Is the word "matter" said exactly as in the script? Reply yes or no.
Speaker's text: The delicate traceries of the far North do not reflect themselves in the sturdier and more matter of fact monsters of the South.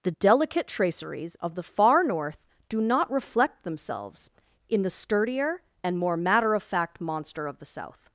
yes